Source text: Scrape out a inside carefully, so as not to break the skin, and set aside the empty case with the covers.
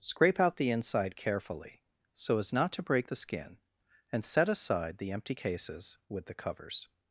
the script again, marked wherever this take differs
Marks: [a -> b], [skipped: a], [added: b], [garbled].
Scrape out [a -> the] inside carefully, so as not to break the skin, and set aside the empty [case -> cases] with the covers.